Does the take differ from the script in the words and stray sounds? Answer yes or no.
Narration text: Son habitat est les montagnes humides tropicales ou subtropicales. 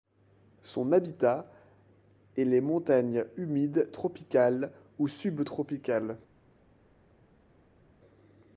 no